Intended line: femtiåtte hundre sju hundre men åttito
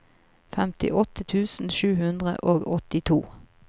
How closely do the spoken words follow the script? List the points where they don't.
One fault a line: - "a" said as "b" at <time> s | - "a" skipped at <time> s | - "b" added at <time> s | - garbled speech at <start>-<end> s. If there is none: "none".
- "hundre" said as "tusen" at 1.3 s
- "men" said as "og" at 2.5 s